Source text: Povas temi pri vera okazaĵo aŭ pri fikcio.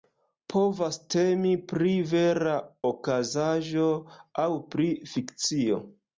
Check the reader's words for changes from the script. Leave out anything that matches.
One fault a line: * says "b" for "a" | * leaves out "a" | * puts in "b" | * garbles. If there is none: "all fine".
all fine